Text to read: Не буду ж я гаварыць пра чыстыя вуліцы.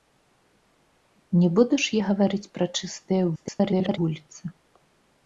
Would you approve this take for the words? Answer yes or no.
no